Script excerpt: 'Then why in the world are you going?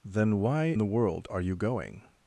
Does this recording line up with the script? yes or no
no